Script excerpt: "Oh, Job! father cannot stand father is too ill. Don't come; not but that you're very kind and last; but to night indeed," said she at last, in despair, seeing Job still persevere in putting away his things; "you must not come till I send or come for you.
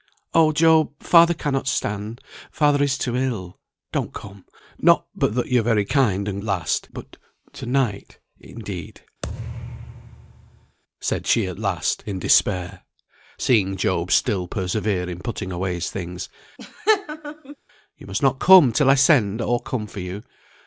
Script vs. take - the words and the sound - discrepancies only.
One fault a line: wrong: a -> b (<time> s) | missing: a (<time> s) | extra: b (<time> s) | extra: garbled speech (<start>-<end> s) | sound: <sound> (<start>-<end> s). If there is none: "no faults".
sound: thud (9.2-10.8 s)
sound: laugh (16.6-17.6 s)